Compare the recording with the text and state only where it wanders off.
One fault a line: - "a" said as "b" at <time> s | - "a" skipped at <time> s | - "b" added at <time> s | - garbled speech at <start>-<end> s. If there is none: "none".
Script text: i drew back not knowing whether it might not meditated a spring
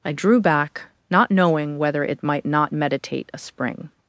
- "meditated" said as "meditate" at 2.7 s